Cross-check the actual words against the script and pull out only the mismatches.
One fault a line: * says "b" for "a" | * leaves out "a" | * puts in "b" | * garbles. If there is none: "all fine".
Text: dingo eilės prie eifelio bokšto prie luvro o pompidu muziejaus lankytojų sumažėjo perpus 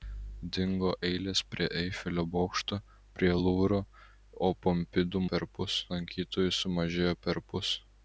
* says "perpus" for "muziejaus"